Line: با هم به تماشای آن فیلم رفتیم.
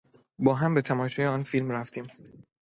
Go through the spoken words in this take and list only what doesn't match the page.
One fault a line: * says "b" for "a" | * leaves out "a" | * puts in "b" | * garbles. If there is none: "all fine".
all fine